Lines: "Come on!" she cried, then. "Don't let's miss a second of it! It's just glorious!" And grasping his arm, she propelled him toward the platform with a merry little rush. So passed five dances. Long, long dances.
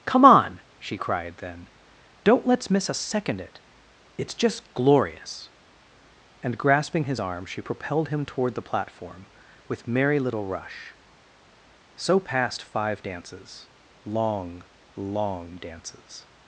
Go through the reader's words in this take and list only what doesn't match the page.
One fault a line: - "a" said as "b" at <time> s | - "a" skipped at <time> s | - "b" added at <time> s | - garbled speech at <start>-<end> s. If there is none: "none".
- "of" skipped at 3.4 s
- "a" skipped at 9.9 s